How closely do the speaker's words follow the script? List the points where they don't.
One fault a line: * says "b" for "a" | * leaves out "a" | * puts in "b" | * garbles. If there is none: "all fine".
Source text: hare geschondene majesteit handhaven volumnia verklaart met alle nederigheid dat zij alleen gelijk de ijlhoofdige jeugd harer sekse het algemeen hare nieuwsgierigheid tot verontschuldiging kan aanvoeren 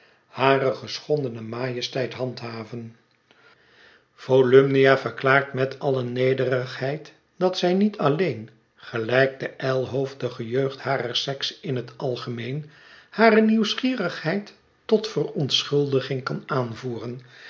* puts in "niet"
* puts in "in"